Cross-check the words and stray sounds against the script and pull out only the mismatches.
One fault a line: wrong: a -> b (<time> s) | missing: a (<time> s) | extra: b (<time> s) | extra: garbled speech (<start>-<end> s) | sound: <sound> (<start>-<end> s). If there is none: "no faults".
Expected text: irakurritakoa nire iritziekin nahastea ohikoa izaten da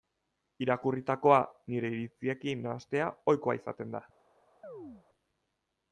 sound: chirp (4.6-5.1 s)